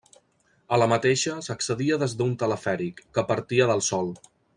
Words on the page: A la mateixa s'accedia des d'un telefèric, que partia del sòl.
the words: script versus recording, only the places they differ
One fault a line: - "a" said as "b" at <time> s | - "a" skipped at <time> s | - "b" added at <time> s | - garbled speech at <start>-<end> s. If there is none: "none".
none